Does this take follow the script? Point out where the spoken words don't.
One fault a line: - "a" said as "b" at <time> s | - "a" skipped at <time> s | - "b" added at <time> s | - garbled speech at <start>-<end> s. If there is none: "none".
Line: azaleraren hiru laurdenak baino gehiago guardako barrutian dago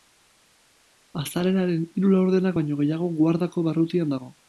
none